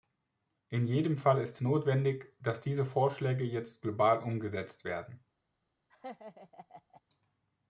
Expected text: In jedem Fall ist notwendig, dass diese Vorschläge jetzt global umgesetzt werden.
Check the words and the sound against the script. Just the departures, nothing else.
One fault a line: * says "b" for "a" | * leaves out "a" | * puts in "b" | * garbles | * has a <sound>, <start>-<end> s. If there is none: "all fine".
* has a laugh, 5.9-7.0 s